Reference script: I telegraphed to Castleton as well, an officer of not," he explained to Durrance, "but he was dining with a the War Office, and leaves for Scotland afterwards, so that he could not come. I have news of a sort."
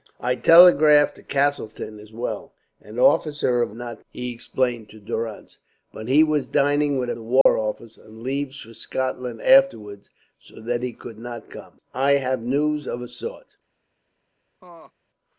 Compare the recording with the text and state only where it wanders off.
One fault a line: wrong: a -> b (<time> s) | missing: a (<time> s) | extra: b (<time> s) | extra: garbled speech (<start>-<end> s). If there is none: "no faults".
no faults